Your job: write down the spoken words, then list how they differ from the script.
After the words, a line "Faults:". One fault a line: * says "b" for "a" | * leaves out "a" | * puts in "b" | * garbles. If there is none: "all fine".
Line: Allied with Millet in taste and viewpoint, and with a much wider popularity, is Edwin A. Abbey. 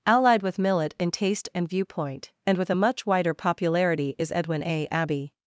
Allied with Millet in taste and viewpoint, and with a much wider popularity, is Edwin A. Abbey.
Faults:
all fine